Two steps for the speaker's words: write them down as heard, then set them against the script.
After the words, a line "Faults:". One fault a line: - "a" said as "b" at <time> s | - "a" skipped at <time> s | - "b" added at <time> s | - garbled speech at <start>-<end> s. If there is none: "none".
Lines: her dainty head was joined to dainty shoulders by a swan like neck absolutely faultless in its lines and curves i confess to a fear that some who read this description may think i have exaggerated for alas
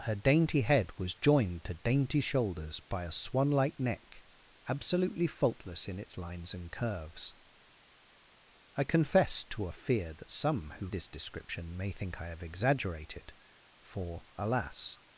her dainty head was joined to dainty shoulders by a swan like neck absolutely faultless in its lines and curves i confess to a fear that some who this description may think i have exaggerated for alas
Faults:
- "read" skipped at 10.9 s